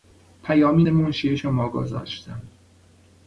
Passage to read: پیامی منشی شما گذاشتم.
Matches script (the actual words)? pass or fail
pass